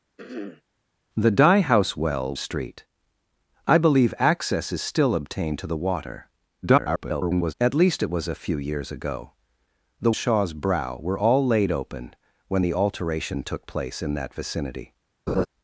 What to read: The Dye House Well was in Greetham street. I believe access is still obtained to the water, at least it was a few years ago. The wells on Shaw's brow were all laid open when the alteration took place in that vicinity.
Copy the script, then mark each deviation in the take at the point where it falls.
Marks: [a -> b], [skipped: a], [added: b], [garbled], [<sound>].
[throat clearing] The Dye House Well [skipped: was in Greetham] street. I believe access is still obtained to the water, [garbled] at least it was a few years ago. The [skipped: wells on] Shaw's brow were all laid open when the alteration took place in that vicinity. [laugh]